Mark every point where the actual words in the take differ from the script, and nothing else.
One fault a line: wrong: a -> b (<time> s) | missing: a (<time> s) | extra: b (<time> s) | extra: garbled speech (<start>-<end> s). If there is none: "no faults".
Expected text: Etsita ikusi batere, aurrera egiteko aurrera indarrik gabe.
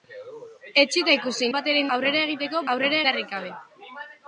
no faults